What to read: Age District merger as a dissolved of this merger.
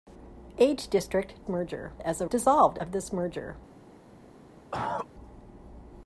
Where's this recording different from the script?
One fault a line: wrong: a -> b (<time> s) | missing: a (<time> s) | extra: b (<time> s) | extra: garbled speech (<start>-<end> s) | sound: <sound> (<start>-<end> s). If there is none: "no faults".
sound: cough (4.7-5.1 s)